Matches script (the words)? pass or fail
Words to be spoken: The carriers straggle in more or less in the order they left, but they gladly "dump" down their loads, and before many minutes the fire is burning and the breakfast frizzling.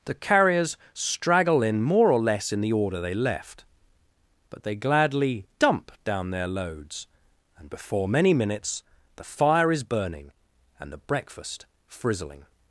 pass